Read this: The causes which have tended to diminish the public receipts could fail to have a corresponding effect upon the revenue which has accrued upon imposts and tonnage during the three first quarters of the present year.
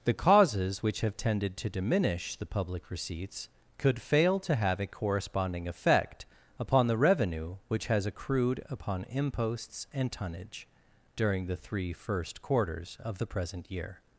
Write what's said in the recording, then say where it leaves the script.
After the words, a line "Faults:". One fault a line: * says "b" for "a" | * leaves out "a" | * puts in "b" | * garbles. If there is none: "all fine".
The causes which have tended to diminish the public receipts could fail to have a corresponding effect upon the revenue which has accrued upon imposts and tonnage during the three first quarters of the present year.
Faults:
all fine